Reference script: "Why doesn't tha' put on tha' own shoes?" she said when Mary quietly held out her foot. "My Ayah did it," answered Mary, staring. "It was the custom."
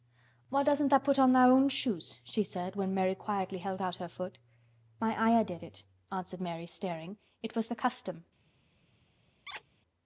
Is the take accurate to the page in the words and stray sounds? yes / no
no